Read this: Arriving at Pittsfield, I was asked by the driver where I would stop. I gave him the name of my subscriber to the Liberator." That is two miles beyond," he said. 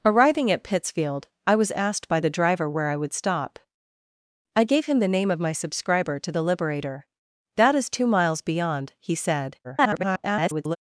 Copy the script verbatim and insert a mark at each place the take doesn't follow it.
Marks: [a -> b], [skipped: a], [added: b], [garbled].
Arriving at Pittsfield, I was asked by the driver where I would stop. I gave him the name of my subscriber to the Liberator." That is two miles beyond," he said. [garbled]